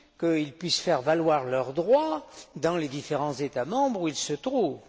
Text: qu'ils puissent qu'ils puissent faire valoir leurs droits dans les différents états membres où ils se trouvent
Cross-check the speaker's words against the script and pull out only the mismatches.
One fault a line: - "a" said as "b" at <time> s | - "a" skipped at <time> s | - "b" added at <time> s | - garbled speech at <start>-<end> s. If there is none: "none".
- "qu'ils puissent" skipped at 0.8 s